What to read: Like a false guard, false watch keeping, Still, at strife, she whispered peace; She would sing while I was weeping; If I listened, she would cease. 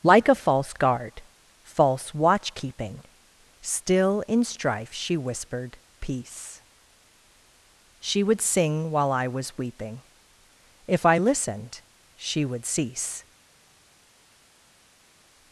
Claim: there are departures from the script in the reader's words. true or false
true